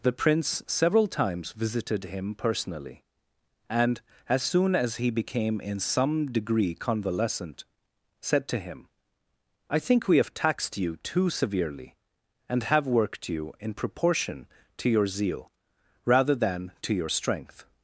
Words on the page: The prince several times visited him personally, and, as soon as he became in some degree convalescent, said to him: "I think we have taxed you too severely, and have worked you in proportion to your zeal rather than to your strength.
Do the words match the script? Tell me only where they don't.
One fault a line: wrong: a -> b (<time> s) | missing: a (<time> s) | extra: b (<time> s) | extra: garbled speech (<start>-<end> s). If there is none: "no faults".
no faults